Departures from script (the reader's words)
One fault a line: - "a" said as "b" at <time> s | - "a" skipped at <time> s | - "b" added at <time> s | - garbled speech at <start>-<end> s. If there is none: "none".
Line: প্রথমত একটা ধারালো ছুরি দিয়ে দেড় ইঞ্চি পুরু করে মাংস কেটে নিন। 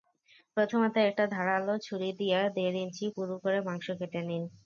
none